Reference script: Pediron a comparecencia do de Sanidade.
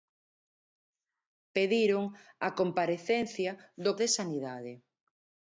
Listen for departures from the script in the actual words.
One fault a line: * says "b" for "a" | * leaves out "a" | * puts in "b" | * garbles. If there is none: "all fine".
all fine